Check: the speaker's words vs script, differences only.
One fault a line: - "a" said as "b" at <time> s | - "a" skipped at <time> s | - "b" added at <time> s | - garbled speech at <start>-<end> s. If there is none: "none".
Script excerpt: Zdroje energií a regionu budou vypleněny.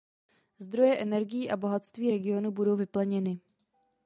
- "bohatství" added at 1.6 s